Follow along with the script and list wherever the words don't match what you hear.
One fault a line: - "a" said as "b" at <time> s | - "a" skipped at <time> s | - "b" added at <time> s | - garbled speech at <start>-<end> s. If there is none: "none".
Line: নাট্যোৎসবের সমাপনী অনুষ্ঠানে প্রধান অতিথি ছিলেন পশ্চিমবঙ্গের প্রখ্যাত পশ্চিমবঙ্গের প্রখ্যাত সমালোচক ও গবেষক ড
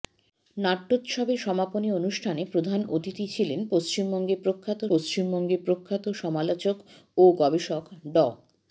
none